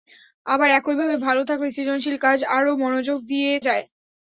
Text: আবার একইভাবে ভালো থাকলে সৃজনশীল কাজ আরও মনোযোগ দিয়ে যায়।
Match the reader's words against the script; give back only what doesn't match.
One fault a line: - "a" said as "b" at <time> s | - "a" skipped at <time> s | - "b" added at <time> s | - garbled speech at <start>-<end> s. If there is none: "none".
none